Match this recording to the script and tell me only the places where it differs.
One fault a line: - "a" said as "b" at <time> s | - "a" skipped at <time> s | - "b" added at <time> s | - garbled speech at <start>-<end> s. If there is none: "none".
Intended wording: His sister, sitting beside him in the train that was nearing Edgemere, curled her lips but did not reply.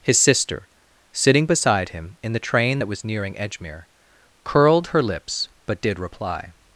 - "not" skipped at 6.0 s